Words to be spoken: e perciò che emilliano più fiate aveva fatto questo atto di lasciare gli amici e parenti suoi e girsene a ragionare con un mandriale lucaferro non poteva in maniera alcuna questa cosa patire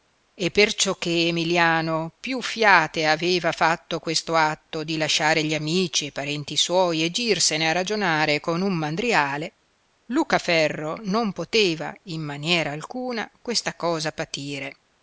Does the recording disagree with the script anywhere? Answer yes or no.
no